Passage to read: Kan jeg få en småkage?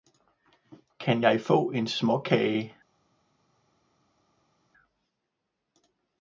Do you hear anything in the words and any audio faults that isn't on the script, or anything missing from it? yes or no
no